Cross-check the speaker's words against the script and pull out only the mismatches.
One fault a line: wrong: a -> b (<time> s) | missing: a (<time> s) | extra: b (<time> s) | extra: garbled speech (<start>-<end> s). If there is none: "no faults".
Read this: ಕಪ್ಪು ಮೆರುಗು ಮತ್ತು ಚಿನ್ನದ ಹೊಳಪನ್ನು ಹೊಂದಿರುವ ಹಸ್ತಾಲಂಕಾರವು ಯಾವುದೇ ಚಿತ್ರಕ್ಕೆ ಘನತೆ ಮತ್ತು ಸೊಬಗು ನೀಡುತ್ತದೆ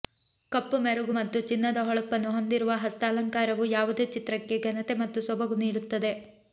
no faults